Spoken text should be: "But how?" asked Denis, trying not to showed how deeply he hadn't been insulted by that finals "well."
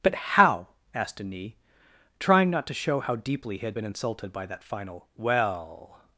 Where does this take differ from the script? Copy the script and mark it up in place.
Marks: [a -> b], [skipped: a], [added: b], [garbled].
"But how?" asked Denis, trying not to [showed -> show] how deeply he [hadn't -> had] been insulted by that [finals -> final] "well."